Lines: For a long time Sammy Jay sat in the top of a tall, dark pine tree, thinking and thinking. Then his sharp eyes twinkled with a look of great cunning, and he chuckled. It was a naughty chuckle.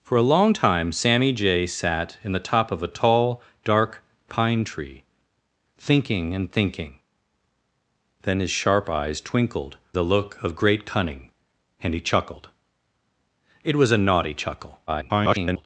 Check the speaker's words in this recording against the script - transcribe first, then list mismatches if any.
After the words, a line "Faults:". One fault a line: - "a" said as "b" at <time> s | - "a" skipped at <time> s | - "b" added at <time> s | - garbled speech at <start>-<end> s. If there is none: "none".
For a long time Sammy Jay sat in the top of a tall, dark pine tree, thinking and thinking. Then his sharp eyes twinkled a look of great cunning, and he chuckled. It was a naughty chuckle. [garbled]
Faults:
- "with" skipped at 9.8 s
- garbled speech at 14.9-15.7 s